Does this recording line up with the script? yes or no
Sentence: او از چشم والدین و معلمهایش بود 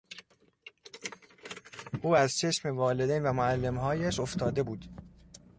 no